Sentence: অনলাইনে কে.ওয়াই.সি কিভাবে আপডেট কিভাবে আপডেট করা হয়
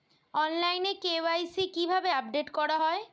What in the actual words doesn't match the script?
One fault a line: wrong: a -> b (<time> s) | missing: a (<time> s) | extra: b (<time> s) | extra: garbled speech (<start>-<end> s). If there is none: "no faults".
missing: কিভাবে আপডেট (2.5 s)